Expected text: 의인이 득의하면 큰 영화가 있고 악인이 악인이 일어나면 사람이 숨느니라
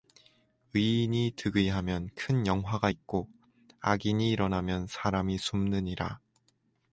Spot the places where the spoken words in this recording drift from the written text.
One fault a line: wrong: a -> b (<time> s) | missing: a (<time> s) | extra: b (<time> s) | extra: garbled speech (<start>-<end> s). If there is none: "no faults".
missing: 악인이 (4.3 s)